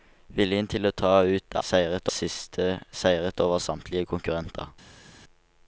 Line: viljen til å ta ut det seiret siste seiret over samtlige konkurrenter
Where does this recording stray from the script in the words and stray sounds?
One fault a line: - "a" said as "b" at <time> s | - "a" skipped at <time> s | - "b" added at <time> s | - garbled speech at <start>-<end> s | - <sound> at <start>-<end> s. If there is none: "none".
none